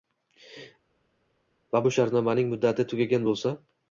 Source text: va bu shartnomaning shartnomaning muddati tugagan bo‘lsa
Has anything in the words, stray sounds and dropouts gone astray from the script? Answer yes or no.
yes